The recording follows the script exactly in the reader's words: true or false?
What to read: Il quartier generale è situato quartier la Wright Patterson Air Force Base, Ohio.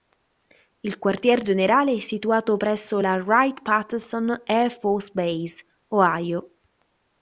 false